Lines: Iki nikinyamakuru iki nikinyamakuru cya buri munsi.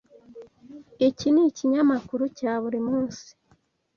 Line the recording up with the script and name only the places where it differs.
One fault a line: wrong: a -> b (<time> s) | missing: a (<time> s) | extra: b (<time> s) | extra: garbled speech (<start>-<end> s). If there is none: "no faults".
missing: iki nikinyamakuru (2.2 s)